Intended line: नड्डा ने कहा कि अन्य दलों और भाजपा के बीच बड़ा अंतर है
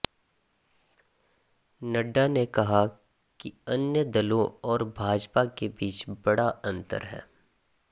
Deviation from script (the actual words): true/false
false